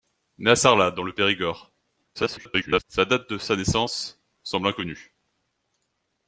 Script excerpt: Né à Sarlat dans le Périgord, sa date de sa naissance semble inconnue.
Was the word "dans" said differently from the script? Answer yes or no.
no